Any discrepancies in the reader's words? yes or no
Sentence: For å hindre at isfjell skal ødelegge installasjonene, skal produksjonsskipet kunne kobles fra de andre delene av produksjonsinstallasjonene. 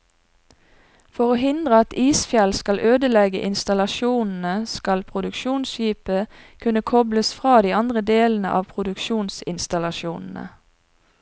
no